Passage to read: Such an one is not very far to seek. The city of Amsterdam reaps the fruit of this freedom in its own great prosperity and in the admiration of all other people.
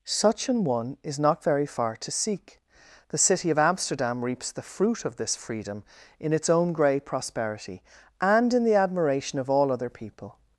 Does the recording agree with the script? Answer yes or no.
no